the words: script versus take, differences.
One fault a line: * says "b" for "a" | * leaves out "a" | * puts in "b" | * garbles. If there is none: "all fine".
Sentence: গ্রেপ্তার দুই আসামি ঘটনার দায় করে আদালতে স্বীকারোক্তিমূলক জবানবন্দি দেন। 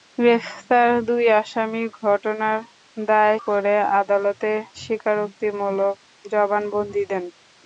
all fine